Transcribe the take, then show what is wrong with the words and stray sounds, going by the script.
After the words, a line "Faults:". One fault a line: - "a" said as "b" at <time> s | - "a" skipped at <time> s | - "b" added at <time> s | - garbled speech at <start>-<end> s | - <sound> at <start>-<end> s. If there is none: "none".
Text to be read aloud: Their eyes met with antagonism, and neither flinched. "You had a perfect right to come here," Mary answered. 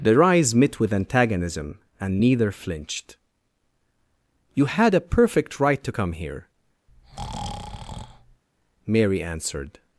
Their eyes met with antagonism, and neither flinched. "You had a perfect right to come here," Mary answered.
Faults:
- breath at 6.9-8.4 s